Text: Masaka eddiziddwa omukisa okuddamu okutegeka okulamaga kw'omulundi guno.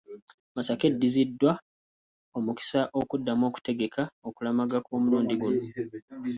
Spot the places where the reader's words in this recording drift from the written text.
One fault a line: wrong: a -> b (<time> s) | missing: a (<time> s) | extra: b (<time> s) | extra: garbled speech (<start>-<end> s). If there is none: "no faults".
no faults